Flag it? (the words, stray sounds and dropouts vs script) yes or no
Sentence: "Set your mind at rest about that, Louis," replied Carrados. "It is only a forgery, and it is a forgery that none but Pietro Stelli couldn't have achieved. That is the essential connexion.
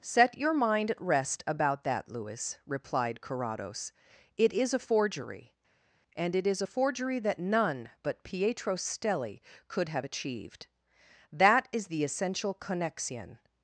yes